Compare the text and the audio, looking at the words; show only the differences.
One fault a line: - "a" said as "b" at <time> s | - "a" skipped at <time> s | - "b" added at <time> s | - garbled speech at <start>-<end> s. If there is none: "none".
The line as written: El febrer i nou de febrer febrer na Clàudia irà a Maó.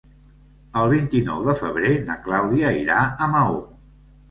- "febrer" said as "vint" at 0.9 s
- "febrer" skipped at 1.9 s